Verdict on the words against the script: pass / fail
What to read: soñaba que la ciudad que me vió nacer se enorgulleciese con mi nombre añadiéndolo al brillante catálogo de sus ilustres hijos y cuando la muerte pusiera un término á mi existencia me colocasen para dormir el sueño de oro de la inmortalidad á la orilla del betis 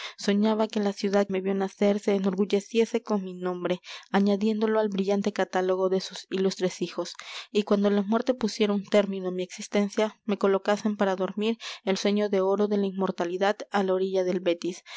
fail